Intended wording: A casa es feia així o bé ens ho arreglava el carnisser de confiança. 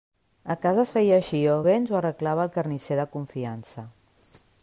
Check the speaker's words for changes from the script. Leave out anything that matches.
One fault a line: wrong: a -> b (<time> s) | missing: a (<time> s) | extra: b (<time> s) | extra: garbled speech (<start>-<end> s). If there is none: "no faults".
no faults